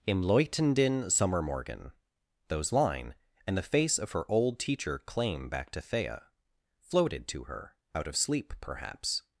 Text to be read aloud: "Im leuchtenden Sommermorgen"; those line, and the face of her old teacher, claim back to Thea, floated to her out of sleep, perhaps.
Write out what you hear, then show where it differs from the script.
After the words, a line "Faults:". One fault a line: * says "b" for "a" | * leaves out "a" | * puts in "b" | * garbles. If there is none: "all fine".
"Im leuchtenden Sommermorgen"; those line, and the face of her old teacher, claim back to Thea, floated to her out of sleep, perhaps.
Faults:
all fine